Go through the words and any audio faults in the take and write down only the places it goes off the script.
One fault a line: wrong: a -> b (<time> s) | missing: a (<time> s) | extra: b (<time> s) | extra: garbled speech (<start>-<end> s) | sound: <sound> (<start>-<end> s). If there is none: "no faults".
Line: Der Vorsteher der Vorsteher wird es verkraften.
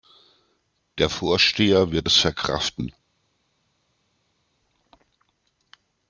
missing: der Vorsteher (1.9 s)